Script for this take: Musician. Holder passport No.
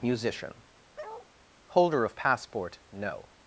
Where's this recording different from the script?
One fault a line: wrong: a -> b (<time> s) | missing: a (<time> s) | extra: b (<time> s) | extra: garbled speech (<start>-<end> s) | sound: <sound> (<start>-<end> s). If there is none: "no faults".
sound: bark (1.0-1.3 s)
extra: of (2.0 s)